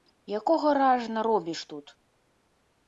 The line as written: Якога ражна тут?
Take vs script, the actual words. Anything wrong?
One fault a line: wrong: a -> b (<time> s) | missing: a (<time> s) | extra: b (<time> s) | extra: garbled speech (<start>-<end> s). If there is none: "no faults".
extra: робіш (1.3 s)